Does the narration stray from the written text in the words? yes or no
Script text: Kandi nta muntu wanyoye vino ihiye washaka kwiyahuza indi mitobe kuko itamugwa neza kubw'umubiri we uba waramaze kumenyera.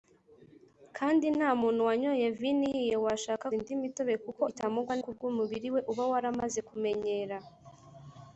yes